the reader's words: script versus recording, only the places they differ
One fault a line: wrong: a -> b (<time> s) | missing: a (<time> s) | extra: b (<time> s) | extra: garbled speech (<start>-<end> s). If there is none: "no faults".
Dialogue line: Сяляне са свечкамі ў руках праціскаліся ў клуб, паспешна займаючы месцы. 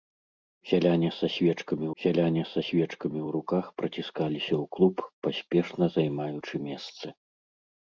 extra: сяляне са свечкамі (2.0 s)